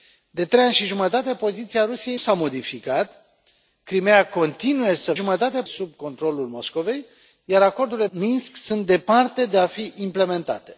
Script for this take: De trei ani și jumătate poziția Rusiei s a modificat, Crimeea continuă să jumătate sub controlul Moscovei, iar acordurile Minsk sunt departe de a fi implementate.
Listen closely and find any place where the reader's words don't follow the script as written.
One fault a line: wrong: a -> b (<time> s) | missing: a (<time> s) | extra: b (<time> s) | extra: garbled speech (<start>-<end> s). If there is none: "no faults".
no faults